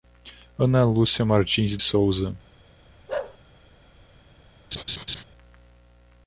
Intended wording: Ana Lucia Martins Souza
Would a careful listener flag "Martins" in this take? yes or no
no